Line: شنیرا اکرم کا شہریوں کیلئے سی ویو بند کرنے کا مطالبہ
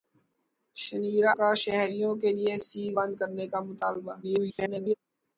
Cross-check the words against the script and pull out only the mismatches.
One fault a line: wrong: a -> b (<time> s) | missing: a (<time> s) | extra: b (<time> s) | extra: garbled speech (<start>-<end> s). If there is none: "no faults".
missing: اکرم (1.3 s)
missing: ویو (2.8 s)
extra: garbled speech (4.2-4.9 s)